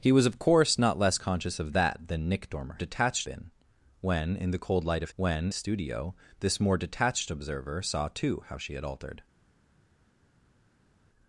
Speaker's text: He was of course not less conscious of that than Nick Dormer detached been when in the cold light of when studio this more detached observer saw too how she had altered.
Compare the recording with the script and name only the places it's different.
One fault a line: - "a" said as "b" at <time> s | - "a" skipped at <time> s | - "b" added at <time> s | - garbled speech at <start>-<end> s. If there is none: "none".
none